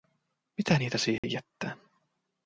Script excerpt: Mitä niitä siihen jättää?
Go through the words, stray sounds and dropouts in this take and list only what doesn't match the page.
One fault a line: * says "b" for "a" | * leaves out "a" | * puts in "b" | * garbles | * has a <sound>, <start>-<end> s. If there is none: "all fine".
* has a dropout, 1.2-1.2 s